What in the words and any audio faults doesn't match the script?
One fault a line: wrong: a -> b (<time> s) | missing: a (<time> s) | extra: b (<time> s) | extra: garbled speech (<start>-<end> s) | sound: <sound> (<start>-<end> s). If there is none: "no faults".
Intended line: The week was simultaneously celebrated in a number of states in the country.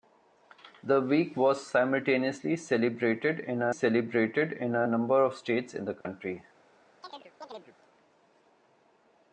extra: celebrated in a (3.7 s)
sound: dropout (6.0-6.1 s)
sound: chirp (7.0-7.8 s)